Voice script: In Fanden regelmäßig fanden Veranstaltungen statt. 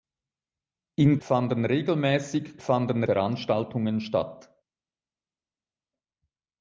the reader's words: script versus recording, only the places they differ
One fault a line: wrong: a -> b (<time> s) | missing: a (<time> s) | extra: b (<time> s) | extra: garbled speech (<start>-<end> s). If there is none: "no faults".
no faults